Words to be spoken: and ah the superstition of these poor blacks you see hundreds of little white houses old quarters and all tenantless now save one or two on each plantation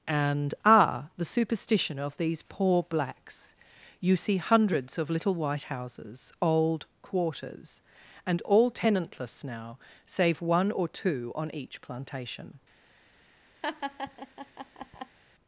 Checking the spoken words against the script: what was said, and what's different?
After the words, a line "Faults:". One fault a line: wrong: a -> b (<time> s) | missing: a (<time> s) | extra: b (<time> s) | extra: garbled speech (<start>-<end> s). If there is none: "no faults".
and ah the superstition of these poor blacks you see hundreds of little white houses old quarters and all tenantless now save one or two on each plantation
Faults:
no faults